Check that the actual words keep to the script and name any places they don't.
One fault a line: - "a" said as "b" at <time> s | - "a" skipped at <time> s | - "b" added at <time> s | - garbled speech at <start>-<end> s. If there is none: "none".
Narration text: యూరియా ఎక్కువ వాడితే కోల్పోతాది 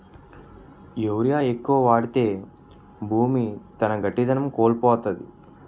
- "భూమి తన గట్టిదనం" added at 3.0 s